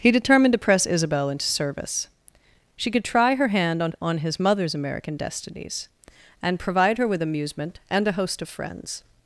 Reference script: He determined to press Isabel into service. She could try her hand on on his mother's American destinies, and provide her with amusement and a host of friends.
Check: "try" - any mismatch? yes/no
no